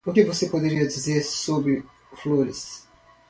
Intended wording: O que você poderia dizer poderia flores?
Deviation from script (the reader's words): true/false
true